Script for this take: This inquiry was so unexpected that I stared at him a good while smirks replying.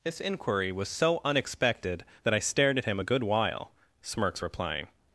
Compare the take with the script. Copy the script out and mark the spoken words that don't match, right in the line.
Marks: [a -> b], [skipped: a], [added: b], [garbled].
This inquiry was so unexpected that I stared at him a good while smirks replying.